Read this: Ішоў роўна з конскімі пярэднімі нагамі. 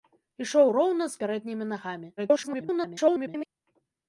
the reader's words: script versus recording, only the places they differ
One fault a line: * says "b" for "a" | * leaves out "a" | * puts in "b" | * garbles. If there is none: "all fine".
* leaves out "конскімі"
* garbles